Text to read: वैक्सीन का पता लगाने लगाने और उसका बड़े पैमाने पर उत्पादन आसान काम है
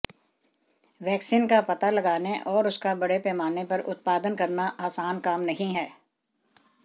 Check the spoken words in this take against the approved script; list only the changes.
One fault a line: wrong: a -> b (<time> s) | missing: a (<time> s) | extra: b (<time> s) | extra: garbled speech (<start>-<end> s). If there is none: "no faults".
missing: लगाने (2.4 s)
extra: करना (4.3 s)
extra: नहीं (5.4 s)